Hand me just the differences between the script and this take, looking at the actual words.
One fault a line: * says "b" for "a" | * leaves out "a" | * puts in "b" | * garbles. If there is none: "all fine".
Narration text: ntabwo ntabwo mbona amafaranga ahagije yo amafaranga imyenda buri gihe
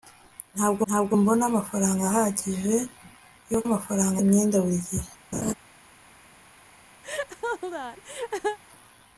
all fine